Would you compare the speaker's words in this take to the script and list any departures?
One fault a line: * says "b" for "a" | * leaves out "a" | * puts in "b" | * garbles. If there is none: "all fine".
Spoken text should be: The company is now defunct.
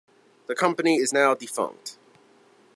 all fine